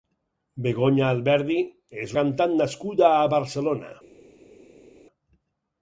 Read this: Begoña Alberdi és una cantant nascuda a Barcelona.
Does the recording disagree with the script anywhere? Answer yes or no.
yes